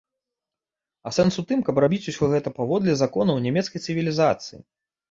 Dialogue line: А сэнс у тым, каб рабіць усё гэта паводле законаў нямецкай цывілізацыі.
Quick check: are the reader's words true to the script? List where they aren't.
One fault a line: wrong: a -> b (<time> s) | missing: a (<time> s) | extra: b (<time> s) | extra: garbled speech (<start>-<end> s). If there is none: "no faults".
no faults